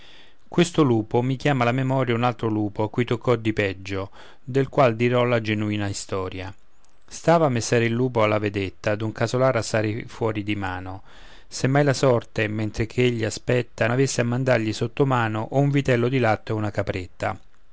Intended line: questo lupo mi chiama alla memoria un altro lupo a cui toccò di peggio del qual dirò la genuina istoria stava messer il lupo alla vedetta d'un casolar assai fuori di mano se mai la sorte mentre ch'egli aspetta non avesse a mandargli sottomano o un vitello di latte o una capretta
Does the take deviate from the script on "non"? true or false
true